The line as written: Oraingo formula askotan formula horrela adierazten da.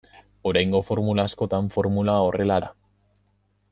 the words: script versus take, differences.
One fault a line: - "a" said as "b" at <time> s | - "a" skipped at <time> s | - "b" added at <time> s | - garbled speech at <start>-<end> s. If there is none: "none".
- "adierazten" skipped at 2.6 s